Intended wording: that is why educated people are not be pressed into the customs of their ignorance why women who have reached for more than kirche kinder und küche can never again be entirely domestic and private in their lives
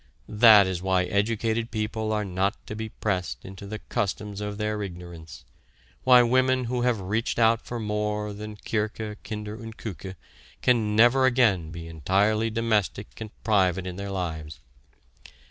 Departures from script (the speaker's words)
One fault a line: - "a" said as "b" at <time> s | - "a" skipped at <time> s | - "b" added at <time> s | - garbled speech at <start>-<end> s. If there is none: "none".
- "to" added at 2.6 s
- "out" added at 7.4 s